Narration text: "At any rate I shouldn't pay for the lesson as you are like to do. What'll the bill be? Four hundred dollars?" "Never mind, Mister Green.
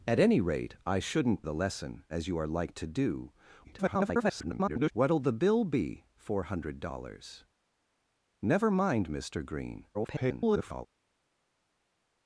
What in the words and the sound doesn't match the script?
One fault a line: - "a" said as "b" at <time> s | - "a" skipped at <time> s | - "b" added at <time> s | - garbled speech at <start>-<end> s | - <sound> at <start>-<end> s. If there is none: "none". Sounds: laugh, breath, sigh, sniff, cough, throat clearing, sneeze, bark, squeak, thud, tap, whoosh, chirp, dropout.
- "pay for" skipped at 1.4 s
- garbled speech at 3.6-4.9 s
- garbled speech at 9.9-10.9 s